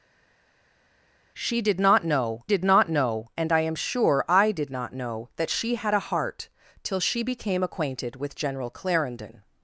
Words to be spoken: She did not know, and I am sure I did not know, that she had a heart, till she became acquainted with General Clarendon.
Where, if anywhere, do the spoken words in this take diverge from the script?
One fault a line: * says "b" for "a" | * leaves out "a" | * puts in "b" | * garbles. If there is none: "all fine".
* puts in "did not know"